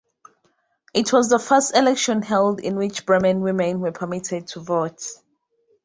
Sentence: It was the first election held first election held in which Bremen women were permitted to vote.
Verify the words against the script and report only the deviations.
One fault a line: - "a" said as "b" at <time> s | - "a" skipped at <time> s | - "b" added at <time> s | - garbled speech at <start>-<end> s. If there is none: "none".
- "first election held" skipped at 2.6 s